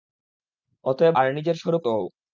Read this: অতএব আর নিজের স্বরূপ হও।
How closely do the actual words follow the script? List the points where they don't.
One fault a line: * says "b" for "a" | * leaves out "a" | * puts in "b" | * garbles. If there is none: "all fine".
all fine